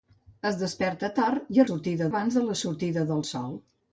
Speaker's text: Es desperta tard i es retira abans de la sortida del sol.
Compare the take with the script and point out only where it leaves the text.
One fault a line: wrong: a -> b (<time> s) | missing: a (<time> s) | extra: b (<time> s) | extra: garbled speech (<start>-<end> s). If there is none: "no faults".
wrong: retira -> sortida (1.7 s)